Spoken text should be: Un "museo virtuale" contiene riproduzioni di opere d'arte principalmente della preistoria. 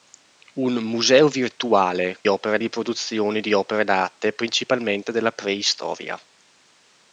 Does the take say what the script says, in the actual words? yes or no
no